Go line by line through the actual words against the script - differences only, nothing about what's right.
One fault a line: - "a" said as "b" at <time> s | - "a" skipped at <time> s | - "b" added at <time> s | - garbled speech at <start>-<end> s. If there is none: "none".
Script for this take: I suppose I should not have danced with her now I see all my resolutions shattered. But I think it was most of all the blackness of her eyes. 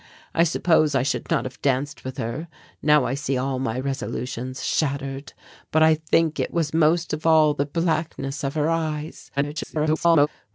- garbled speech at 9.4-10.3 s